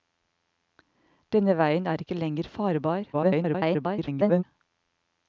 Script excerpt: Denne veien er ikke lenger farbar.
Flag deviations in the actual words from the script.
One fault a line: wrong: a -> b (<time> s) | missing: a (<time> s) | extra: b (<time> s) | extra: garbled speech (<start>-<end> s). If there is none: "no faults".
extra: garbled speech (3.1-4.4 s)